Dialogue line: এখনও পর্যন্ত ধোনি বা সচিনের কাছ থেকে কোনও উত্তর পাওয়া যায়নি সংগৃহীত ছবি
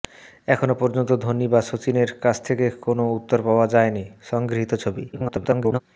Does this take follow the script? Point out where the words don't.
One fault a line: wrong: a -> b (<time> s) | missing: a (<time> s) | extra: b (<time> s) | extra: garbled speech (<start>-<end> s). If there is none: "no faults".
extra: garbled speech (5.1-5.8 s)